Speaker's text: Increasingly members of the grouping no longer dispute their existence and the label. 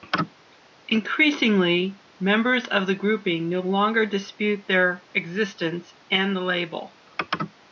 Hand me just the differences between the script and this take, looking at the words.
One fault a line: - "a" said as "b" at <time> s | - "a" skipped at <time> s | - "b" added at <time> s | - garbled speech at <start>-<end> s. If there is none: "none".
none